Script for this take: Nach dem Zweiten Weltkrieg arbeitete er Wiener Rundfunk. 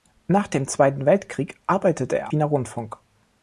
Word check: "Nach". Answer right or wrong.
right